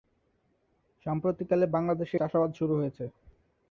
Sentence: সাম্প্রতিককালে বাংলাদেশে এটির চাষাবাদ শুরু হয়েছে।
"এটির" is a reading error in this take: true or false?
true